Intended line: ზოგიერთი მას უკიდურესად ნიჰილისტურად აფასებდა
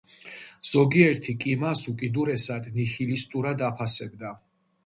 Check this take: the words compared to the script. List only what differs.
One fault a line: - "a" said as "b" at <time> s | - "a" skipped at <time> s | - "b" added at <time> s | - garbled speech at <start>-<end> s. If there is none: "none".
- "კი" added at 1.4 s